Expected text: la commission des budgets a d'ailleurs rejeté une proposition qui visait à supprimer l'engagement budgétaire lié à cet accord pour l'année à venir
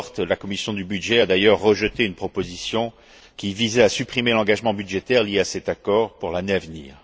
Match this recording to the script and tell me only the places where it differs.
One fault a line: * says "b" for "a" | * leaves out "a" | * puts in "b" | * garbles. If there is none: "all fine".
all fine